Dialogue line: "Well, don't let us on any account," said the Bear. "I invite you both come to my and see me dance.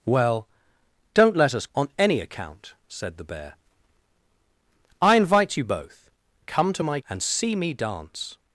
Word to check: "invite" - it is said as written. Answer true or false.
true